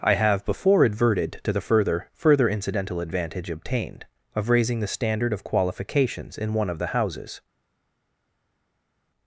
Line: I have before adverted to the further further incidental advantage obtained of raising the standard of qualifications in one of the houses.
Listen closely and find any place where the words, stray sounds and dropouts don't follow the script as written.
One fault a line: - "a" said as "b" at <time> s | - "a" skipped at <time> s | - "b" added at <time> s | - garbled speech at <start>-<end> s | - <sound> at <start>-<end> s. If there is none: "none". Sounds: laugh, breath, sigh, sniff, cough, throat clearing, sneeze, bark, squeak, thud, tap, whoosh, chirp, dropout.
none